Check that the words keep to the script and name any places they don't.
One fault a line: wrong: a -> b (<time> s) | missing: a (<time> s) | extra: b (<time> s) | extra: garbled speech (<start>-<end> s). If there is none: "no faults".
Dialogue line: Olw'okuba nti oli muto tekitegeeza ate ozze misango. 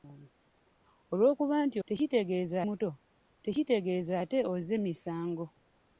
wrong: oli -> tekitegeeza (1.9 s)